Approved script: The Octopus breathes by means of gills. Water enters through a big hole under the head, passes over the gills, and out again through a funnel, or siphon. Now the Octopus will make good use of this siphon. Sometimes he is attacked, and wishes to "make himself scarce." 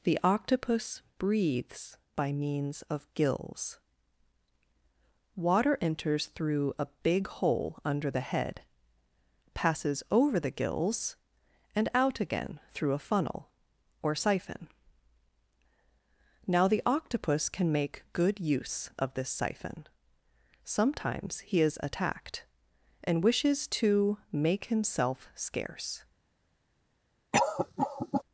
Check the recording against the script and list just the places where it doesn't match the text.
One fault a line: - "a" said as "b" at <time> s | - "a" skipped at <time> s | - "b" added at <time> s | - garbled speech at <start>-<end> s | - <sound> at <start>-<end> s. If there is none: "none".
- "will" said as "can" at 17.5 s
- cough at 27.3-28.2 s